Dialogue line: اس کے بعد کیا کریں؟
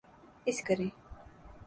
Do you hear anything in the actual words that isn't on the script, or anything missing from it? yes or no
yes